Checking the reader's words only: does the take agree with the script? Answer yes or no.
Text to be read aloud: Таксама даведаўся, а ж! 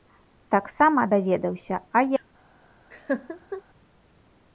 yes